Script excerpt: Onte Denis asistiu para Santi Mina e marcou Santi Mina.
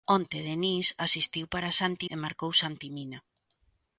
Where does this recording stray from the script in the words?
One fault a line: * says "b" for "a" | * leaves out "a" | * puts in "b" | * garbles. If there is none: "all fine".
* leaves out "Mina"